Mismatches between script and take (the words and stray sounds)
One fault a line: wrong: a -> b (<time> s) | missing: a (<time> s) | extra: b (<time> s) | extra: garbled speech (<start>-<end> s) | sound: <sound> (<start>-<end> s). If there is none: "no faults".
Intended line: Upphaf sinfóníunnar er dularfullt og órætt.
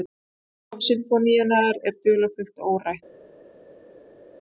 no faults